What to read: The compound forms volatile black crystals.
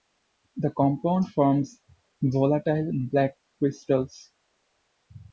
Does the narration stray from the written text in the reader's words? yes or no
no